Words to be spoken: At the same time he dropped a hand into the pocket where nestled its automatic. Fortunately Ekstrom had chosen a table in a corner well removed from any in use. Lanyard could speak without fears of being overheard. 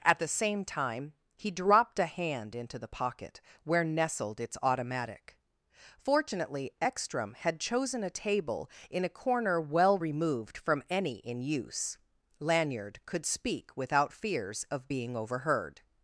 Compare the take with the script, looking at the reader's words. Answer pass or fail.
pass